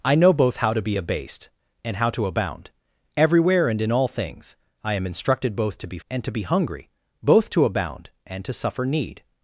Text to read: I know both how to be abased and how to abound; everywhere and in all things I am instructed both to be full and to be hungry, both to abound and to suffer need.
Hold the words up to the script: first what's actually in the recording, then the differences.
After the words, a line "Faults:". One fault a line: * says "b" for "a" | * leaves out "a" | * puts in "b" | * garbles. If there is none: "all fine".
I know both how to be abased and how to abound; everywhere and in all things I am instructed both to be and to be hungry, both to abound and to suffer need.
Faults:
* leaves out "full"